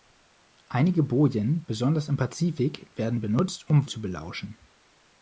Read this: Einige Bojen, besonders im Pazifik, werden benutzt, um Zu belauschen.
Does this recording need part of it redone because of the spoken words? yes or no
no